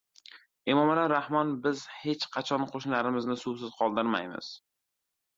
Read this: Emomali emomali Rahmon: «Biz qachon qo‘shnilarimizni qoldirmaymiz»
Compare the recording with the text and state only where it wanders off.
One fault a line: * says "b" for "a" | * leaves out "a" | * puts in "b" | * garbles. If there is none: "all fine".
* leaves out "emomali"
* puts in "hech"
* puts in "suvsiz"